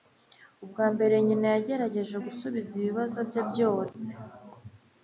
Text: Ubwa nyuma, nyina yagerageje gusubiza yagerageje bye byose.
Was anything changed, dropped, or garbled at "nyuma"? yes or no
yes